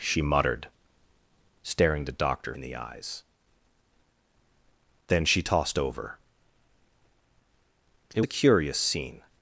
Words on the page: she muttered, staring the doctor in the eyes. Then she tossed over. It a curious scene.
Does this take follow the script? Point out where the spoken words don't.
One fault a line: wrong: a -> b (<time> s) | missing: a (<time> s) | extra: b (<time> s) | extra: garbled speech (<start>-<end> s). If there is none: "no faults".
no faults